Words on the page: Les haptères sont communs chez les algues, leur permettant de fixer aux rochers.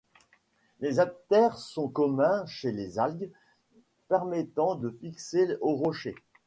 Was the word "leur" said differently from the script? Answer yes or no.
yes